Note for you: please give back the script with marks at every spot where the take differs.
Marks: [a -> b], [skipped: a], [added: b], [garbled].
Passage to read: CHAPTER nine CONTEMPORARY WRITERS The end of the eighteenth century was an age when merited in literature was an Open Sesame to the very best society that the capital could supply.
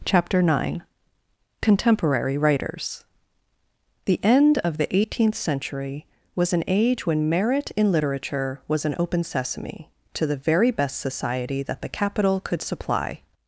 CHAPTER nine CONTEMPORARY WRITERS The end of the eighteenth century was an age when [merited -> merit] in literature was an Open Sesame to the very best society that the capital could supply.